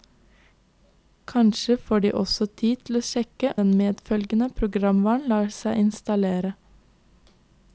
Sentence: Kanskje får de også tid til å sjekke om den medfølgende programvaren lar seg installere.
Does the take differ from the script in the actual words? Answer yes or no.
yes